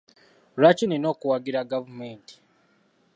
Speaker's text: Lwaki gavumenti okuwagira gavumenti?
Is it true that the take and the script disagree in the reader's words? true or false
true